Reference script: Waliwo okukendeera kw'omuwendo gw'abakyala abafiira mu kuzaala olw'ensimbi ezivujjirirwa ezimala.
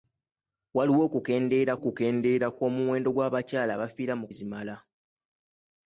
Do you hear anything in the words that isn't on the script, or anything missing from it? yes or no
yes